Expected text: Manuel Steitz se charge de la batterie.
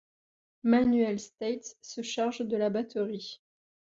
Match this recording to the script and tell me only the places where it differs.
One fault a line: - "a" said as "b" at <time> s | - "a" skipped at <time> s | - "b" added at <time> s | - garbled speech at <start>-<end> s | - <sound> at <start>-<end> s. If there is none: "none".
none